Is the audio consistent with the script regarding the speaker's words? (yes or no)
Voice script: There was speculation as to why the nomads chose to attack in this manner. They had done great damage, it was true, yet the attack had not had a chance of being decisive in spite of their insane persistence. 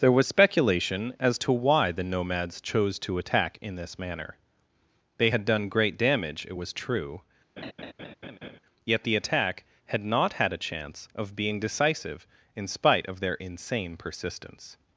yes